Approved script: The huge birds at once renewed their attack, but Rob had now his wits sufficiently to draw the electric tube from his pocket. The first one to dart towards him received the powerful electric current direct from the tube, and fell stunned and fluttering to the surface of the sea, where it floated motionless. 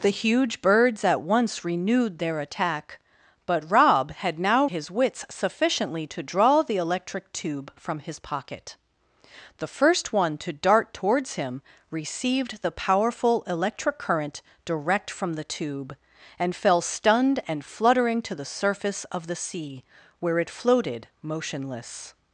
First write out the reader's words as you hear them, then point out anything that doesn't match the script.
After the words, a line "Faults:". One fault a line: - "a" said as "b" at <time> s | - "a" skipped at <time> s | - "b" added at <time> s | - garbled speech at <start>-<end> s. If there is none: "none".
The huge birds at once renewed their attack, but Rob had now his wits sufficiently to draw the electric tube from his pocket. The first one to dart towards him received the powerful electric current direct from the tube, and fell stunned and fluttering to the surface of the sea, where it floated motionless.
Faults:
none